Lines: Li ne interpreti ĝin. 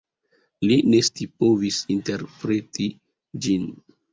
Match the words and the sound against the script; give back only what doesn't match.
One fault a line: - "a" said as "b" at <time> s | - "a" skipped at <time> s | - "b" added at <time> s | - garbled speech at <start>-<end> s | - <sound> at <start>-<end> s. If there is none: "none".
- "scipovis" added at 1.1 s